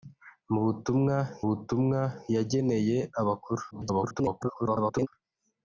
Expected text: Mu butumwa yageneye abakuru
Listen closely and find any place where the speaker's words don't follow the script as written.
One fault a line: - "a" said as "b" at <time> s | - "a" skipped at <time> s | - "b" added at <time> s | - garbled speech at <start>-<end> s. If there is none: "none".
- "butumwa" added at 1.5 s
- garbled speech at 3.7-5.1 s